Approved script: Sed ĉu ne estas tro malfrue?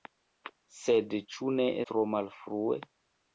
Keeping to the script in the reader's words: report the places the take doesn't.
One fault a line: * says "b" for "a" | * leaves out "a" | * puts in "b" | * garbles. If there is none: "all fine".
* leaves out "estas"